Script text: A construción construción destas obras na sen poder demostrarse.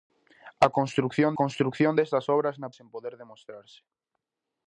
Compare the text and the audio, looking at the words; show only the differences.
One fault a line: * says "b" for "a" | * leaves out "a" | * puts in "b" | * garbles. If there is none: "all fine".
all fine